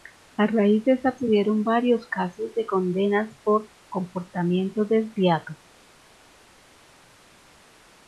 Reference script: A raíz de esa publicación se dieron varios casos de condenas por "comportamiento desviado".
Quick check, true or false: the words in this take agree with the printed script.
false